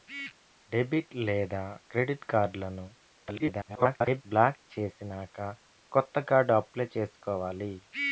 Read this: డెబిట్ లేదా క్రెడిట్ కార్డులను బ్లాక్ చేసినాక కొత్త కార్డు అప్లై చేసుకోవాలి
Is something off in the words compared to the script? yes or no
yes